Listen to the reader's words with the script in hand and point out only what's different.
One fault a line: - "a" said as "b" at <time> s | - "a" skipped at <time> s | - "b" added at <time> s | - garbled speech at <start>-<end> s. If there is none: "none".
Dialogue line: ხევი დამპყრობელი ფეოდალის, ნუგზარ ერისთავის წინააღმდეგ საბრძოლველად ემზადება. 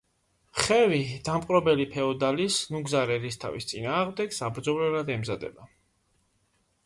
none